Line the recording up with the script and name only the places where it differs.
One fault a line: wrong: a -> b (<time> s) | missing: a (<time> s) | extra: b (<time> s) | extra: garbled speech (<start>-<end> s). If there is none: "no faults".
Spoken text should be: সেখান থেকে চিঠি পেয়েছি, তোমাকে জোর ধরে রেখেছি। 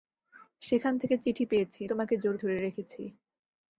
no faults